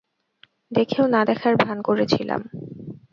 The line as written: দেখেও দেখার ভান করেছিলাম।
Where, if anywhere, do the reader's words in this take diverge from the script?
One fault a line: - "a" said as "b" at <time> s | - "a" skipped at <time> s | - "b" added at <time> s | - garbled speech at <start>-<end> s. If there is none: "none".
- "না" added at 1.1 s